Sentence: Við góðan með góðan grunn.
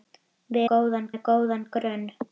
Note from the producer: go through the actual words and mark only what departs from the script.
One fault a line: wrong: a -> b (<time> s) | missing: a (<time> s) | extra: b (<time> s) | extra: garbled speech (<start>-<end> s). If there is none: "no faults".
no faults